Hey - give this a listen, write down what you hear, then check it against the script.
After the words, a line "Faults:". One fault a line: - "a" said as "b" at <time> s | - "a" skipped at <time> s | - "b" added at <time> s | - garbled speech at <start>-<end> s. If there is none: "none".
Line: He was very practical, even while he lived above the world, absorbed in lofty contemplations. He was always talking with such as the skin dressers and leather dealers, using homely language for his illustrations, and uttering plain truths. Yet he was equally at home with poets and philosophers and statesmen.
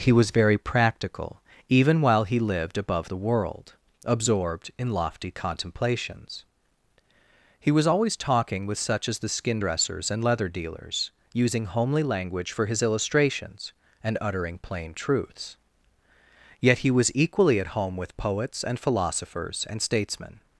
He was very practical, even while he lived above the world, absorbed in lofty contemplations. He was always talking with such as the skin dressers and leather dealers, using homely language for his illustrations, and uttering plain truths. Yet he was equally at home with poets and philosophers and statesmen.
Faults:
none